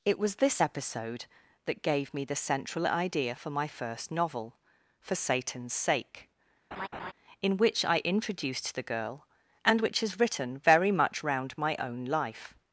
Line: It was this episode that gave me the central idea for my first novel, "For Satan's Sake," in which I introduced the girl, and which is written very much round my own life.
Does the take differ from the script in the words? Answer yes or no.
no